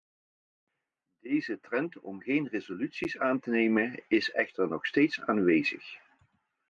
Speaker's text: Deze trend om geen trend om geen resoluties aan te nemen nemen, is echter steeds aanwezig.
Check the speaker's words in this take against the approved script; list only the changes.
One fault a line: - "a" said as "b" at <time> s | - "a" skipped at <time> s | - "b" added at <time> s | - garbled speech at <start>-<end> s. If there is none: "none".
- "trend om geen" skipped at 2.5 s
- "nemen" skipped at 4.0 s
- "nog" added at 4.7 s